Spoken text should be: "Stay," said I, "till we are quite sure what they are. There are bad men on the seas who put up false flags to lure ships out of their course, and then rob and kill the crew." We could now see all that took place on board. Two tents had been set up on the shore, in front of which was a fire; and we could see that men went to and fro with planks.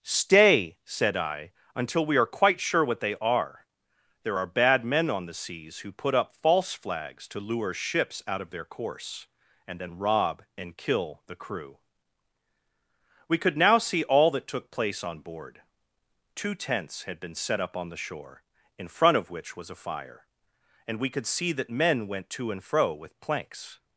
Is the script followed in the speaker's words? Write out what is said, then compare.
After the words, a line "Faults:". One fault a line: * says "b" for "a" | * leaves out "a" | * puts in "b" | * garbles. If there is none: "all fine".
"Stay," said I, "until we are quite sure what they are. There are bad men on the seas who put up false flags to lure ships out of their course, and then rob and kill the crew." We could now see all that took place on board. Two tents had been set up on the shore, in front of which was a fire; and we could see that men went to and fro with planks.
Faults:
* says "until" for "till"